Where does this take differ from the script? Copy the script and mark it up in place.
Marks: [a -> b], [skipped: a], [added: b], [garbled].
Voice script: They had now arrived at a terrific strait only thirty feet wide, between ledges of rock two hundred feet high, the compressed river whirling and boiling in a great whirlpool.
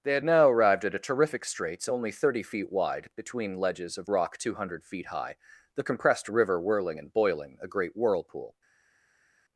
They had now arrived at a terrific [strait -> straits] only thirty feet wide, between ledges of rock two hundred feet high, the compressed river whirling and boiling [skipped: in] a great whirlpool.